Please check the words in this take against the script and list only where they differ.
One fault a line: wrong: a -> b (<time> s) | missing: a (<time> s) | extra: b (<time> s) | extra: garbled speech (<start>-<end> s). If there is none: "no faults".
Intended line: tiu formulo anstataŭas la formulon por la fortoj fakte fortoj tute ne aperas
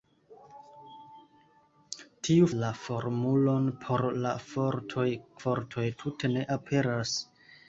missing: formulo anstataŭas (2.5 s)
missing: fakte (5.1 s)